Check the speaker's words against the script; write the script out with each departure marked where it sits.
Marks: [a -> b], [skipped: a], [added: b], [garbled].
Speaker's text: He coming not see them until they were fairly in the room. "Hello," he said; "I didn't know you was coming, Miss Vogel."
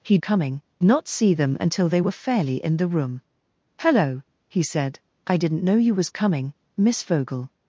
He coming not see them until they were fairly in the room. "Hello," he said; "I didn't know you was coming, Miss Vogel."